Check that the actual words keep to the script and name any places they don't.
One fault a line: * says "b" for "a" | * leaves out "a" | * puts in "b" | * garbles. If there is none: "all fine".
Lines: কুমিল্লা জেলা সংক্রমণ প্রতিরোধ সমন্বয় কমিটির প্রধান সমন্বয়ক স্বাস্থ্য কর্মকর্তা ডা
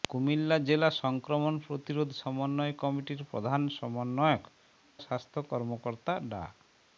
all fine